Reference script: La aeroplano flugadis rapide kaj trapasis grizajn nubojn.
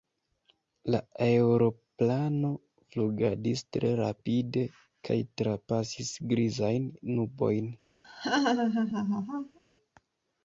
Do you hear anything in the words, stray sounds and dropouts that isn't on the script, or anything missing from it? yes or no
yes